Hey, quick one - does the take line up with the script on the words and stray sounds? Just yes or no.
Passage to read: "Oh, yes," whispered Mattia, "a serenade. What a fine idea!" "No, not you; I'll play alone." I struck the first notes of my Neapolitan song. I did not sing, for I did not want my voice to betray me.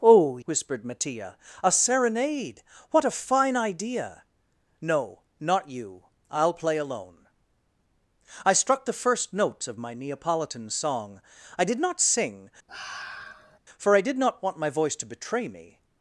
no